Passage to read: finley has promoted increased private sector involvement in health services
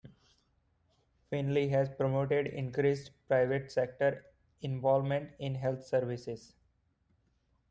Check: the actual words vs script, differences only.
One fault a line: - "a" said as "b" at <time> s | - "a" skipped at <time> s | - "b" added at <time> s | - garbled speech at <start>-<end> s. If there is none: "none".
none